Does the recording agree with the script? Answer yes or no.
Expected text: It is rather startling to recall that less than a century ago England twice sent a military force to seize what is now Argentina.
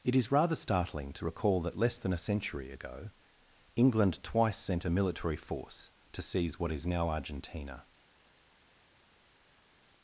yes